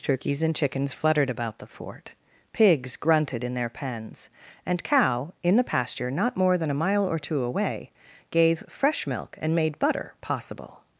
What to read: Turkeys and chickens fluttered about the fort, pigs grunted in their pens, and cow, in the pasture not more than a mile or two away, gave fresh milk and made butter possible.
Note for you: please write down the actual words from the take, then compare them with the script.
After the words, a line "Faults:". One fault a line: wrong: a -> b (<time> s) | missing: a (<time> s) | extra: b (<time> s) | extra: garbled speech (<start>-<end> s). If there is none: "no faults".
Turkeys and chickens fluttered about the fort, pigs grunted in their pens, and cow, in the pasture not more than a mile or two away, gave fresh milk and made butter possible.
Faults:
no faults